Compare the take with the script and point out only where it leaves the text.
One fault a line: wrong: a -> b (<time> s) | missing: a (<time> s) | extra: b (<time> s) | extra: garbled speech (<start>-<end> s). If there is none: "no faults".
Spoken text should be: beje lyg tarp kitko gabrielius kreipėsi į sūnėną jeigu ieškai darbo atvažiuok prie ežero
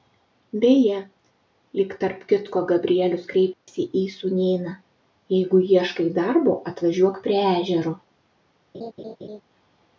no faults